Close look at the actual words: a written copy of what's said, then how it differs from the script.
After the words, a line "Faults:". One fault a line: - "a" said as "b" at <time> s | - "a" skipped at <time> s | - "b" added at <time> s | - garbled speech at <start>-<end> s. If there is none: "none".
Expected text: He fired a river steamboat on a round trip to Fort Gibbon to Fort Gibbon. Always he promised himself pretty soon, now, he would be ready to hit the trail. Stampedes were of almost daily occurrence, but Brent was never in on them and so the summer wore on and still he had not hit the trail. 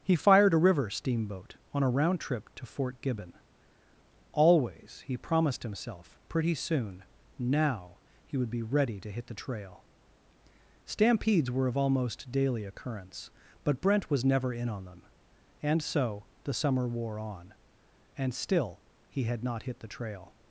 He fired a river steamboat on a round trip to Fort Gibbon. Always he promised himself pretty soon, now, he would be ready to hit the trail. Stampedes were of almost daily occurrence, but Brent was never in on them and so the summer wore on and still he had not hit the trail.
Faults:
- "to Fort Gibbon" skipped at 3.3 s